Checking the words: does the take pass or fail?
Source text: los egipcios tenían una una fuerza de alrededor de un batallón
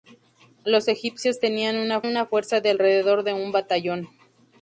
pass